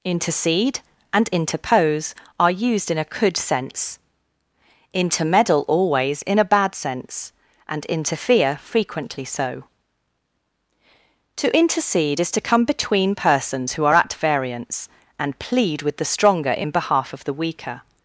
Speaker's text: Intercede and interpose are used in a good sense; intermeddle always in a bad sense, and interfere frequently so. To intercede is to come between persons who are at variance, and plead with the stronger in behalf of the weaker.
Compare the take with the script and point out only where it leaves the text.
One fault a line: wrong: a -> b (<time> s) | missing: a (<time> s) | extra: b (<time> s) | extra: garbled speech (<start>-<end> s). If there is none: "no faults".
wrong: good -> could (3.0 s)